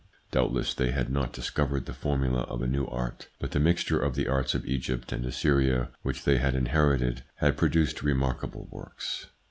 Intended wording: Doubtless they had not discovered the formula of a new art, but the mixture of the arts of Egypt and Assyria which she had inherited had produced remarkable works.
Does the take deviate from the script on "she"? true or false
true